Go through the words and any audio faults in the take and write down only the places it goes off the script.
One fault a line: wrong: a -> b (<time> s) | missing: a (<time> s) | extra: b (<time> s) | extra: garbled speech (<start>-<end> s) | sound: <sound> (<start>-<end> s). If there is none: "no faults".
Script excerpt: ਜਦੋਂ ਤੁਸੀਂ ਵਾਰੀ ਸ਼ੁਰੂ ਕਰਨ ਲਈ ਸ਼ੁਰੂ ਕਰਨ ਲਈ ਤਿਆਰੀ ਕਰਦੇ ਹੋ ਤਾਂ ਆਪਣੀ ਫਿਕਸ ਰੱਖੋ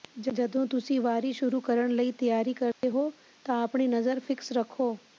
missing: ਸ਼ੁਰੂ ਕਰਨ ਲਈ (2.1 s)
sound: dropout (2.7-2.8 s)
extra: ਨਜ਼ਰ (3.9 s)